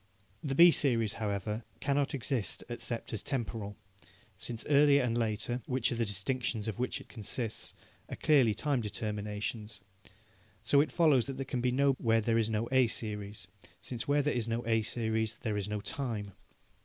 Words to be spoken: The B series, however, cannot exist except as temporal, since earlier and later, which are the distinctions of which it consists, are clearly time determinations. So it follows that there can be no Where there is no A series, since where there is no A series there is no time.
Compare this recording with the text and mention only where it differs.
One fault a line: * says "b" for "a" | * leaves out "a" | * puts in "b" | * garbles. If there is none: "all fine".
all fine